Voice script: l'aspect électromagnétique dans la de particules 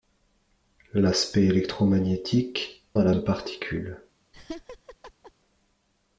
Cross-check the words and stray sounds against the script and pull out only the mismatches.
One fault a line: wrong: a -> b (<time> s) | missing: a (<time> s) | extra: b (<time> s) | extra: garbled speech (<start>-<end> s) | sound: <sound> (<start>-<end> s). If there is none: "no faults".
sound: laugh (4.3-5.3 s)